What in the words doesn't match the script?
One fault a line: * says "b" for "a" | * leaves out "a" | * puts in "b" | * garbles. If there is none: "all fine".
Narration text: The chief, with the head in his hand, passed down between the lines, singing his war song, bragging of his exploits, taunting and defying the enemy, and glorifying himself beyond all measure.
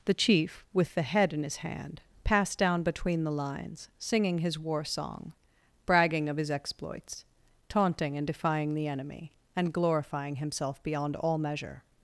all fine